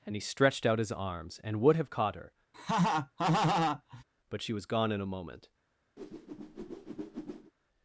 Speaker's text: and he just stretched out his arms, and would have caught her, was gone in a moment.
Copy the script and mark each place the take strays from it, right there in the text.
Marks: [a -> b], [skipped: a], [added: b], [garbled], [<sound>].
and he [skipped: just] stretched out his arms, and would have caught her, [laugh] [added: but she] was gone in a moment. [whoosh]